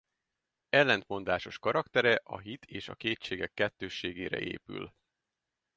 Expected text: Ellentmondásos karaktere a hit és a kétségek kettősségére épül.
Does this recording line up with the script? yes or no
yes